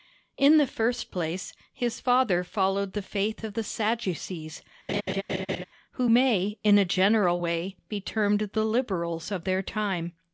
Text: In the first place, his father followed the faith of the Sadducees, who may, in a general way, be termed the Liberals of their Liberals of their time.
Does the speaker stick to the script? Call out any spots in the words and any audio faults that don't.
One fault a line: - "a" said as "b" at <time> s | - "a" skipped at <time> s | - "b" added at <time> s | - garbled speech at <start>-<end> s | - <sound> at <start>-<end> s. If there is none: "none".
- laugh at 4.9-5.6 s
- "Liberals of their" skipped at 9.6 s